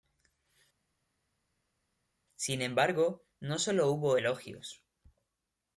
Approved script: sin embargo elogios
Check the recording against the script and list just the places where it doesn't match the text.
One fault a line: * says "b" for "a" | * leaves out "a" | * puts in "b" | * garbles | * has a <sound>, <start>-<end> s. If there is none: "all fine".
* puts in "no solo hubo"